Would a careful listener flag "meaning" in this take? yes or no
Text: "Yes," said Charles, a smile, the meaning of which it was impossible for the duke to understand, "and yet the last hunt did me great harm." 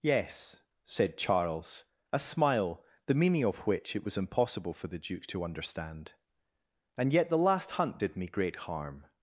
no